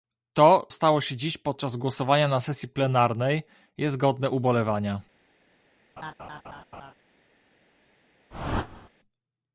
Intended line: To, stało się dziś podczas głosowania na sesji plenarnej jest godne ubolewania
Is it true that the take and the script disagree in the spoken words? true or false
false